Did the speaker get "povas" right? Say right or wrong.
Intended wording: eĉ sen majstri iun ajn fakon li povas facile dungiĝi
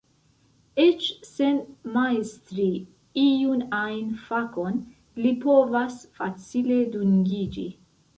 right